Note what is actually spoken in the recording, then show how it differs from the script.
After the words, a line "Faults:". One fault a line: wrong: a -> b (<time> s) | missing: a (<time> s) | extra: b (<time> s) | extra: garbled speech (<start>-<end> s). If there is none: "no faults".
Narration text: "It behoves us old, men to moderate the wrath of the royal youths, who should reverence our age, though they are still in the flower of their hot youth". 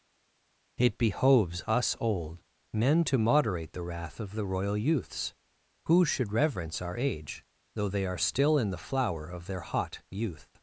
"It behoves us old, men to moderate the wrath of the royal youths, who should reverence our age, though they are still in the flower of their hot youth".
Faults:
no faults